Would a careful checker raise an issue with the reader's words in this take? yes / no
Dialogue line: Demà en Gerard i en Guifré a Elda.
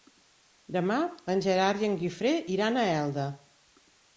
yes